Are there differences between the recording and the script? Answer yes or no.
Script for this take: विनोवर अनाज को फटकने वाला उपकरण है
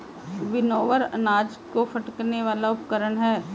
no